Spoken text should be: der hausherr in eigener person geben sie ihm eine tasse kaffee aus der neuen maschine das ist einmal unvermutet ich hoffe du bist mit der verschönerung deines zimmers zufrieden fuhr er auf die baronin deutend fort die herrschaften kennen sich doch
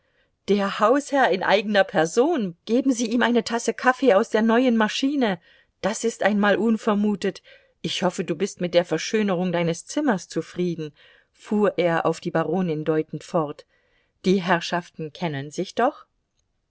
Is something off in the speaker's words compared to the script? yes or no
no